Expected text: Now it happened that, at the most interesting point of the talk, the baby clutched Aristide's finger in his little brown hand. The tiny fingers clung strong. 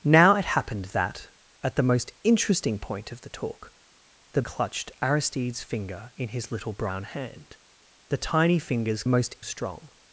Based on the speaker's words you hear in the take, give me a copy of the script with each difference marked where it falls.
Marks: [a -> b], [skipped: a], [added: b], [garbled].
Now it happened that, at the most interesting point of the talk, the [skipped: baby] clutched Aristide's finger in his little brown hand. The tiny fingers [clung -> most] strong.